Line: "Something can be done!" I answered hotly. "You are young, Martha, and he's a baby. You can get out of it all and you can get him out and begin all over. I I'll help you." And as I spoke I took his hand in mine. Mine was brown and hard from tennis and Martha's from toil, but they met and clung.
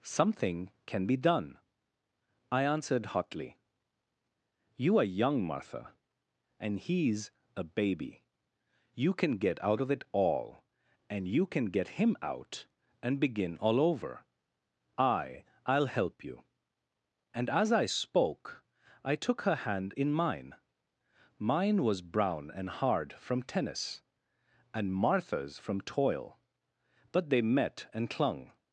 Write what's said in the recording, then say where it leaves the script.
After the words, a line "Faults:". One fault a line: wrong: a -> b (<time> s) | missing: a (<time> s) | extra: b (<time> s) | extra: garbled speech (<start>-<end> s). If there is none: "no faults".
"Something can be done!" I answered hotly. "You are young, Martha, and he's a baby. You can get out of it all and you can get him out and begin all over. I I'll help you." And as I spoke I took her hand in mine. Mine was brown and hard from tennis and Martha's from toil, but they met and clung.
Faults:
wrong: his -> her (19.4 s)